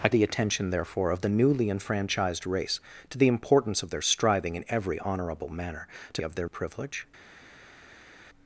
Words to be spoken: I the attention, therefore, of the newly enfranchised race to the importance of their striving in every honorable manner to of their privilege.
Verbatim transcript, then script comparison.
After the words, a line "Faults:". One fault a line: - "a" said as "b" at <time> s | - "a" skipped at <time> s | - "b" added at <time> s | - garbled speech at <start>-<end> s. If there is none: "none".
I the attention, therefore, of the newly enfranchised race to the importance of their striving in every honorable manner to of their privilege.
Faults:
none